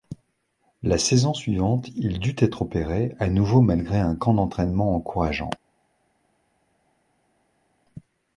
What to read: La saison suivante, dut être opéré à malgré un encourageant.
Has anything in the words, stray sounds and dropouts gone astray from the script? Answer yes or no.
yes